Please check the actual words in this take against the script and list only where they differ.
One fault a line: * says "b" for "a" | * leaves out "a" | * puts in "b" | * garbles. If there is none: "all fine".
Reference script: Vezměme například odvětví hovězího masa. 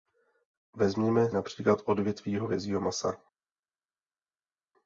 all fine